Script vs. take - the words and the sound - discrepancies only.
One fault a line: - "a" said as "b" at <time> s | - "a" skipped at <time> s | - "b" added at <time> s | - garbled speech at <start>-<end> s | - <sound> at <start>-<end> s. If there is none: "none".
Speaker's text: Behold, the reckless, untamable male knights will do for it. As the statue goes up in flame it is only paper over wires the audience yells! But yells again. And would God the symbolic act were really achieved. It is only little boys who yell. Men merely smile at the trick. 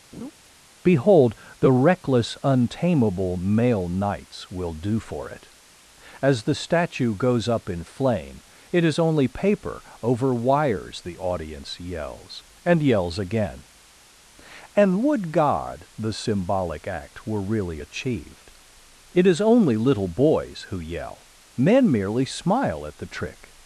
- laugh at 0.1-0.3 s
- "But" said as "And" at 12.6 s